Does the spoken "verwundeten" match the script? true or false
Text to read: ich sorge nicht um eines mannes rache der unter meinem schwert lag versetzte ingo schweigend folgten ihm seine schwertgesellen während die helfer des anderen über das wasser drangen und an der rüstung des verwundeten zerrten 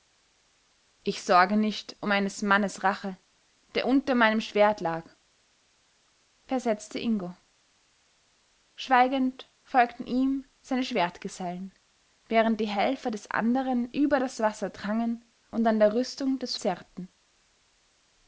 false